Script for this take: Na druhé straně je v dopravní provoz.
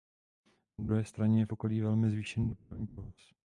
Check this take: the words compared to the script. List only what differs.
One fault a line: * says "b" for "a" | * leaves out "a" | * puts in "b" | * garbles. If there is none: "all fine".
* puts in "okolí velmi zvýšený"